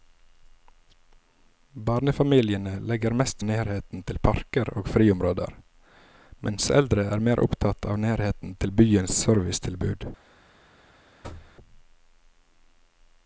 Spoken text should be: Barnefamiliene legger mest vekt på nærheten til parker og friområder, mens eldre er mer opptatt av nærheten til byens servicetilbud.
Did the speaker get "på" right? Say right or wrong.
wrong